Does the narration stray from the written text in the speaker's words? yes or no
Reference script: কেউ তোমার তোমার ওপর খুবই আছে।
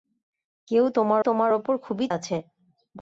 no